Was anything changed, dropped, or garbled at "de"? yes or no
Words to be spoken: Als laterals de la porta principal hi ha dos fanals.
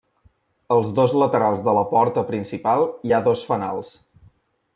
no